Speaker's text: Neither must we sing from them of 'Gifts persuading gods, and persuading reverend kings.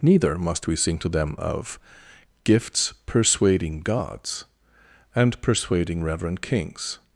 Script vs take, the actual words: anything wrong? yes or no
yes